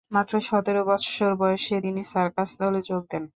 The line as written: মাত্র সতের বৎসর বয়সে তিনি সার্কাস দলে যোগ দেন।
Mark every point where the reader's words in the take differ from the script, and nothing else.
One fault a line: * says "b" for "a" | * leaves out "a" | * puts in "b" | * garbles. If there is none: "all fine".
all fine